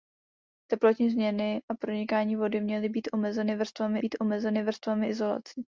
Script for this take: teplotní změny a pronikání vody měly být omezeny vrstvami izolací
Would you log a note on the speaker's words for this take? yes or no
yes